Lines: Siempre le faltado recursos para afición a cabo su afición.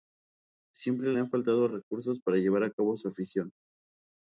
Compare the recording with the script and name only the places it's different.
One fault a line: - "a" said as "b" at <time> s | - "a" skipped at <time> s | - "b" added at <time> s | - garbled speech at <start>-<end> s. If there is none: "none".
- "han" added at 1.2 s
- "afición" said as "llevar" at 2.4 s